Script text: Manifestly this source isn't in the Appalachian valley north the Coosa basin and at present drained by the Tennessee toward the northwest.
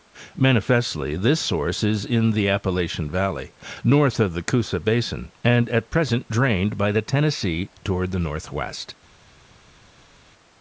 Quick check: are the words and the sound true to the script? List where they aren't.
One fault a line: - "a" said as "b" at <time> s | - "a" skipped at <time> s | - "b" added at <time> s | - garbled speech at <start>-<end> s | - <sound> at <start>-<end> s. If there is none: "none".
- "isn't" said as "is" at 1.8 s
- "of" added at 4.2 s